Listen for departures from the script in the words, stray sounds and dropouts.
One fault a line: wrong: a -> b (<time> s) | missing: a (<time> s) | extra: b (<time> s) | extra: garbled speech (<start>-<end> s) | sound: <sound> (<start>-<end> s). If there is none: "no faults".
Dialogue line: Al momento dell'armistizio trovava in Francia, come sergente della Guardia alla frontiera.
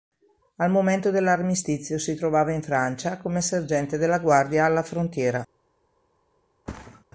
extra: si (2.0 s)
sound: thud (6.7-7.0 s)